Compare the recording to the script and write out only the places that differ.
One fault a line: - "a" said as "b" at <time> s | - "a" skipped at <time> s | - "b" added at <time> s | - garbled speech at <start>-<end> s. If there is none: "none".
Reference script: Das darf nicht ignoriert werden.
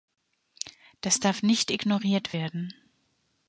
none